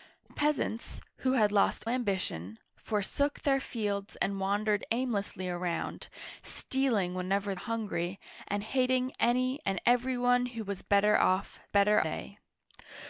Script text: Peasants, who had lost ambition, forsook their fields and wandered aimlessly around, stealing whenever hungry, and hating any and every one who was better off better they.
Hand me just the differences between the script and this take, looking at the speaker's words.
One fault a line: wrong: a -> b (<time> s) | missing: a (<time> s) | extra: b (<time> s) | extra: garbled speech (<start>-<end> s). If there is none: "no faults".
no faults